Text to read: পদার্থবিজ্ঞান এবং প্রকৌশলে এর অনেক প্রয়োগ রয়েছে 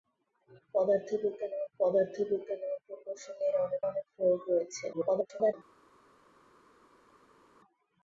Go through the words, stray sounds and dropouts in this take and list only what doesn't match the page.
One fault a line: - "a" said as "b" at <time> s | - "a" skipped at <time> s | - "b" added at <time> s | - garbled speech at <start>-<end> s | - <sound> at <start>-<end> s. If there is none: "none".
- "পদার্থবিজ্ঞান এবং" added at 1.8 s
- "অনেক" added at 3.9 s
- garbled speech at 4.9-5.5 s